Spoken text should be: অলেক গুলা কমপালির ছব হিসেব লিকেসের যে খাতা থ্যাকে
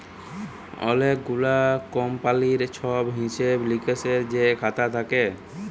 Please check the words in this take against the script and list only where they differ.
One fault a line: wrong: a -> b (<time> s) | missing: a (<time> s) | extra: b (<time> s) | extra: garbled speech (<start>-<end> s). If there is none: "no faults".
no faults